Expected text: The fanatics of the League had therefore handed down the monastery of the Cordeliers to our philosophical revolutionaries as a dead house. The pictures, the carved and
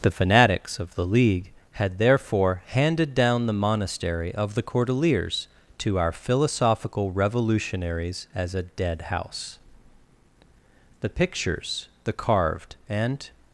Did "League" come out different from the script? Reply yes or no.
no